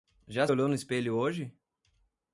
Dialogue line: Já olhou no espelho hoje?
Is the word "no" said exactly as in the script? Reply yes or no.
yes